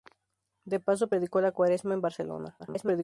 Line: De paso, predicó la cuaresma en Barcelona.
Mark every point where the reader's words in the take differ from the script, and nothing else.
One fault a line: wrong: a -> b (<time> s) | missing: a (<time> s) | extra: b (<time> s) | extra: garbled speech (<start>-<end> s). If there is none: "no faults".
extra: garbled speech (2.6-3.0 s)